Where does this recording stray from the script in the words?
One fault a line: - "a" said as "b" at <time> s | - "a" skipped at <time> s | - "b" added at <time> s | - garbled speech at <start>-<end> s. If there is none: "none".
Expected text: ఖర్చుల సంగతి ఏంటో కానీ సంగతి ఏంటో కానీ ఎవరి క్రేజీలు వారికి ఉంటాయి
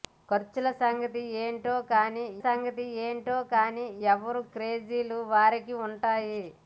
none